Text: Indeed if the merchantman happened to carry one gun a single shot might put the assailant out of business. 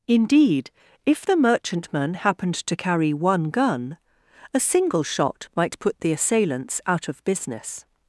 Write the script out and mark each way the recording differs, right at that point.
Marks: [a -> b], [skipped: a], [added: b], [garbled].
Indeed if the merchantman happened to carry one gun a single shot might put the [assailant -> assailants] out of business.